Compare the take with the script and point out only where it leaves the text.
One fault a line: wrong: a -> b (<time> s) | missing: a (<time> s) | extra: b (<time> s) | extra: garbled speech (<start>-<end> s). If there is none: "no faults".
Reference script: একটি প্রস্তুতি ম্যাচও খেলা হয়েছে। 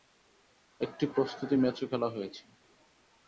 no faults